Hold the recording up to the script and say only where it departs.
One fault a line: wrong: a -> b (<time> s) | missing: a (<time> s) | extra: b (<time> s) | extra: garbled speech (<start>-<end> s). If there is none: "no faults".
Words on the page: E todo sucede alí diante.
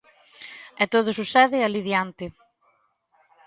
no faults